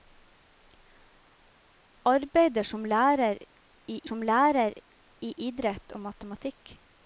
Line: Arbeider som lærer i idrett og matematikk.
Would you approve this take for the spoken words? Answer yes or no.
no